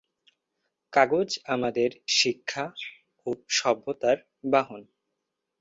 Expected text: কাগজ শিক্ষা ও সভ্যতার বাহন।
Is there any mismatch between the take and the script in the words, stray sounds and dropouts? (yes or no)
yes